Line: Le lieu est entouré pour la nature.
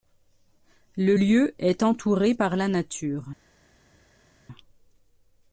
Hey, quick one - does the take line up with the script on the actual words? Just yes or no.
no